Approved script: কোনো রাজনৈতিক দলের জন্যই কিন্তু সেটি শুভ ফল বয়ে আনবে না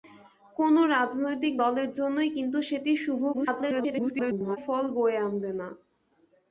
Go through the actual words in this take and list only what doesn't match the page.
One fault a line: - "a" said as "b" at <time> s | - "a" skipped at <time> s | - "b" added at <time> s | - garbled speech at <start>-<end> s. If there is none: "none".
- garbled speech at 3.3-4.6 s